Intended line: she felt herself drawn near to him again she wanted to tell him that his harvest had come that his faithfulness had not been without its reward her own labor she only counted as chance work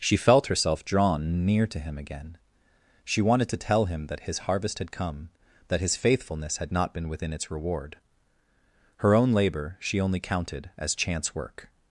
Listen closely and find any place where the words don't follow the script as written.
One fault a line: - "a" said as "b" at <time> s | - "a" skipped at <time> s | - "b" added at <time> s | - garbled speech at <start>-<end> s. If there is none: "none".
- "without" said as "within" at 7.1 s